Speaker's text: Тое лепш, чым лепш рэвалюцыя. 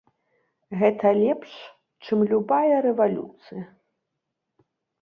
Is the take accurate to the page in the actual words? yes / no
no